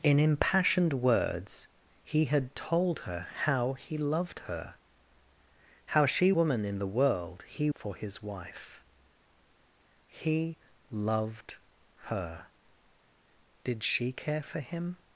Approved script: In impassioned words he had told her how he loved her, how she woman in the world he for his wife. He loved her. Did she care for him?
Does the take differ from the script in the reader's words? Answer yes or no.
no